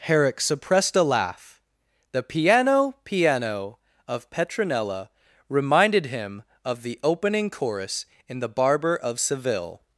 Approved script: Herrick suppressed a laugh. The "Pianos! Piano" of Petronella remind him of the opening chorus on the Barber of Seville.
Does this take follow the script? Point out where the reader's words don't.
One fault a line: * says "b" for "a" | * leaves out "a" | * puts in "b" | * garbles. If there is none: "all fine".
* says "Piano" for "Pianos"
* says "reminded" for "remind"
* says "in" for "on"